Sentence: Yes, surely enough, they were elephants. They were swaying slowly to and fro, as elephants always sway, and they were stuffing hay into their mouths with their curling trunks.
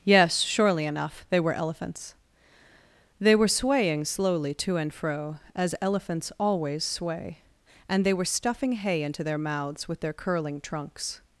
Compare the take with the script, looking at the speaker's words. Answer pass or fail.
pass